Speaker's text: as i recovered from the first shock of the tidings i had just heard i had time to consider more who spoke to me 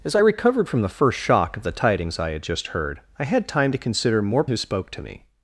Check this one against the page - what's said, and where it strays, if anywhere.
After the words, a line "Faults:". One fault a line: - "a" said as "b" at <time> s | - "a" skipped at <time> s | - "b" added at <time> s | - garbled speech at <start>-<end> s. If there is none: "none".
as i recovered from the first shock of the tidings i had just heard i had time to consider more who spoke to me
Faults:
none